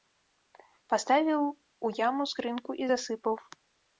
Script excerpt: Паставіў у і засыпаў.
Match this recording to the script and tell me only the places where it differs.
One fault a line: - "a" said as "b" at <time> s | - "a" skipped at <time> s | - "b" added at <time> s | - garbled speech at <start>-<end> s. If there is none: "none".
- "яму скрынку" added at 2.1 s